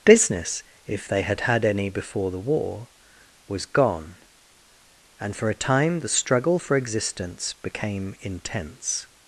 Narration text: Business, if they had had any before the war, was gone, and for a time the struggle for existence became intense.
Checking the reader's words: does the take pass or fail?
pass